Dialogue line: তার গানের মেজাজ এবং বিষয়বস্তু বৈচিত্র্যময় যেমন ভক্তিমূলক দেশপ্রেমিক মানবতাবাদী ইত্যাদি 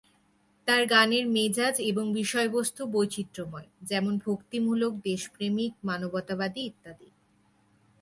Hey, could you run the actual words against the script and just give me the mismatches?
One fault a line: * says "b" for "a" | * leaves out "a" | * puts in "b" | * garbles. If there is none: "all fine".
all fine